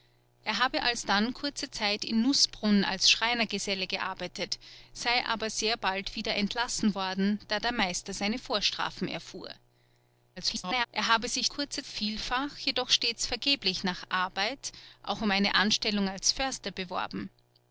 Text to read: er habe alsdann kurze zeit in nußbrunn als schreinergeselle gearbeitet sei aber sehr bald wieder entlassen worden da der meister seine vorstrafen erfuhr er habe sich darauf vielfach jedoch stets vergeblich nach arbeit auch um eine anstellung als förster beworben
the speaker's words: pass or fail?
fail